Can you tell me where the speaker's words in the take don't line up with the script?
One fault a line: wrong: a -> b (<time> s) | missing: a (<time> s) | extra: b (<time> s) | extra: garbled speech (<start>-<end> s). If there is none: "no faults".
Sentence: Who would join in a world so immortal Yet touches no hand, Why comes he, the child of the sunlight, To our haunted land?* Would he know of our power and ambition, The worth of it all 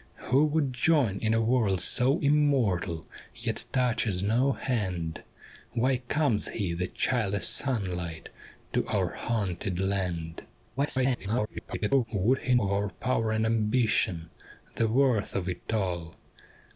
missing: of (7.3 s)
extra: garbled speech (10.8-12.0 s)
missing: know (12.6 s)